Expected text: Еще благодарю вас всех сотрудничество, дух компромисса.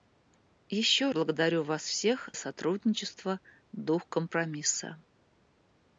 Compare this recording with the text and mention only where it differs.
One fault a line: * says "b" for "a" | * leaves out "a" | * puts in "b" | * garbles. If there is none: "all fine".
all fine